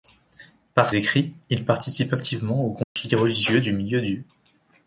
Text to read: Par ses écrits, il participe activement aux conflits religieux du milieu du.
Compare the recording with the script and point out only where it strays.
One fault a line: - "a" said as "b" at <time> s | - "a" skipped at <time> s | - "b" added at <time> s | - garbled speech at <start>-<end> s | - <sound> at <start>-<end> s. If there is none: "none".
- "ses" skipped at 0.9 s
- dropout at 2.8-3.0 s